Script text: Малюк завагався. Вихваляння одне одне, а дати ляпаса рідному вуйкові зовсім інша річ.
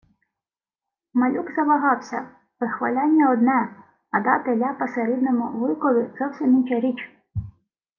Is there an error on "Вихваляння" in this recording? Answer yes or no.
no